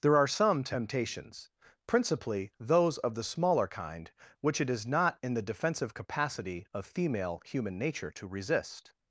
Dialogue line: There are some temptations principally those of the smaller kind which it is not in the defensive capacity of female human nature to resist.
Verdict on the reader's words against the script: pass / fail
pass